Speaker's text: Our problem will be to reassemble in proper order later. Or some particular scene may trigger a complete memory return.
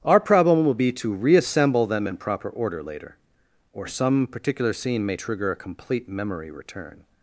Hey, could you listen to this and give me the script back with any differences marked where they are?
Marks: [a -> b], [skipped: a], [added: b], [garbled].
Our problem will be to reassemble [added: them] in proper order later. Or some particular scene may trigger a complete memory return.